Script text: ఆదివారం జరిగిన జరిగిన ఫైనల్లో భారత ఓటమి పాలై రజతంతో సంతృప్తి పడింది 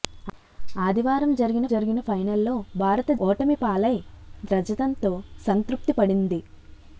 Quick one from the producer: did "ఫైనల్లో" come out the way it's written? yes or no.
yes